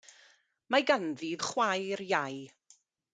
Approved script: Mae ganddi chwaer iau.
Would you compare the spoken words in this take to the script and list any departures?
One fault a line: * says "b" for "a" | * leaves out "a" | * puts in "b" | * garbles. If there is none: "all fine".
all fine